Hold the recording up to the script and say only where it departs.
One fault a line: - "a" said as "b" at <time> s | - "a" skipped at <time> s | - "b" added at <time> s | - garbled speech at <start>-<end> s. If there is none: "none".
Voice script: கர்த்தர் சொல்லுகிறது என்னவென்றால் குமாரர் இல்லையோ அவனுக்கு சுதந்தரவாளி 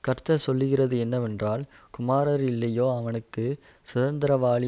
none